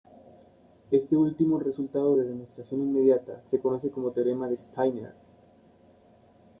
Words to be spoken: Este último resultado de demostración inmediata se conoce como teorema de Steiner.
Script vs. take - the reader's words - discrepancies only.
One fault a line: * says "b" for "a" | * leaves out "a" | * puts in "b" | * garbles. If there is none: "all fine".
all fine